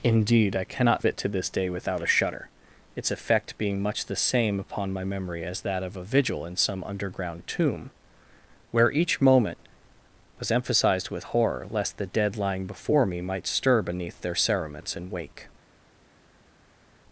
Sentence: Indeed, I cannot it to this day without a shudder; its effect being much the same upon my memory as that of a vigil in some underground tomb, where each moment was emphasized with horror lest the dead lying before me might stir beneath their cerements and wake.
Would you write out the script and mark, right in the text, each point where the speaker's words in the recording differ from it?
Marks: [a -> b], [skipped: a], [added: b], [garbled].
Indeed, I cannot it to this day without a shudder; its effect being much the same upon my memory as that of a vigil in some underground tomb, where each moment was emphasized with horror lest the dead lying before me might stir beneath their cerements and wake.